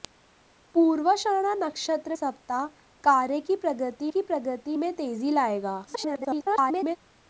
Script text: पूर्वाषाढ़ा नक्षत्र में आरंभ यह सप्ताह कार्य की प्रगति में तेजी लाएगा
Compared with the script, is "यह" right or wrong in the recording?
wrong